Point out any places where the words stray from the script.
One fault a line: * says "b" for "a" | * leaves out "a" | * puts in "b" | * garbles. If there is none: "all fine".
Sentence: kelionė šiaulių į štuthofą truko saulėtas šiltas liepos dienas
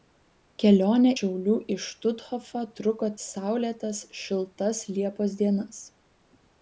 all fine